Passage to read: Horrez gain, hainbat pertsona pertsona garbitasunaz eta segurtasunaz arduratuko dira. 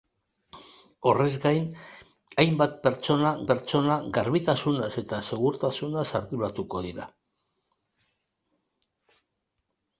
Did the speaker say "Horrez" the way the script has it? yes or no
yes